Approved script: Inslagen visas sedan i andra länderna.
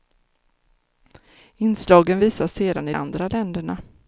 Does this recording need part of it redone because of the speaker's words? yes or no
no